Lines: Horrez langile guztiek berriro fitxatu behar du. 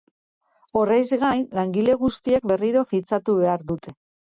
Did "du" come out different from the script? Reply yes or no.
yes